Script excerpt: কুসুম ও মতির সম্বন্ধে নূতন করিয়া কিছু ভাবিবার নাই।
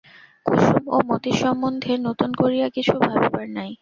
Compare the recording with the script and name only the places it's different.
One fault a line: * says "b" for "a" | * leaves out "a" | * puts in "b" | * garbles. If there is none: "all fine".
all fine